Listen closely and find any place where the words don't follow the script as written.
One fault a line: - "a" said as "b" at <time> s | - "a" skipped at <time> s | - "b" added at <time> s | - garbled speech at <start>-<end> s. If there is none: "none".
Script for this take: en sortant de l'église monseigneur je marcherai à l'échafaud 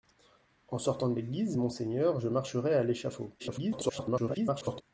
- garbled speech at 3.4-4.8 s